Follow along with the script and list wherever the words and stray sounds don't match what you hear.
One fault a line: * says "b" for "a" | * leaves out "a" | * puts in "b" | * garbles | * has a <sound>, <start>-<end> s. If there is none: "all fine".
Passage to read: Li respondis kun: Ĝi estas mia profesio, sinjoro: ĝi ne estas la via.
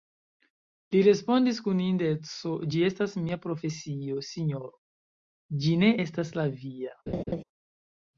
* puts in "indeco"
* has a laugh, 7.1-7.4 s